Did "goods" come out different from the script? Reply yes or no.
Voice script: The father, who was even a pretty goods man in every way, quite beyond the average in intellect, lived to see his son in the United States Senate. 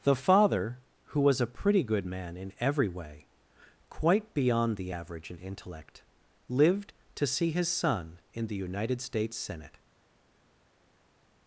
yes